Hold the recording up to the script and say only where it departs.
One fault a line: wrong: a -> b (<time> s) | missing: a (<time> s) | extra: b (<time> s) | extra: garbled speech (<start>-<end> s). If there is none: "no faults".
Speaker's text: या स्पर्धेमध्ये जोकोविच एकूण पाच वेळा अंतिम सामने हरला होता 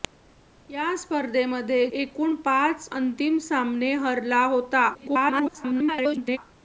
missing: जोकोविच (1.9 s)
missing: वेळा (2.9 s)
extra: garbled speech (4.9-6.4 s)